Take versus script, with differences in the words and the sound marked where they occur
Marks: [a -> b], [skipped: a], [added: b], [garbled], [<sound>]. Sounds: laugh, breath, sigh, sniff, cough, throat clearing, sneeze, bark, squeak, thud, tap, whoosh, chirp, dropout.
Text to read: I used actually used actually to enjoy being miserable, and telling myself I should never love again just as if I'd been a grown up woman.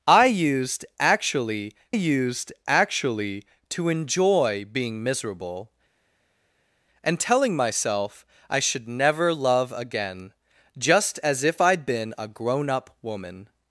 I used actually used actually to enjoy being miserable, and telling myself I should never love again just as if I'd been a grown up woman.